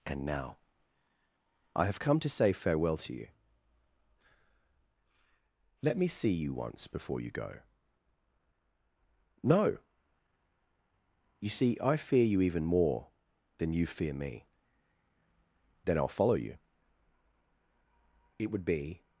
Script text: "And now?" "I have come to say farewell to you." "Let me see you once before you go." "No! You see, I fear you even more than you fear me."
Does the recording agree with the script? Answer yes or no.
no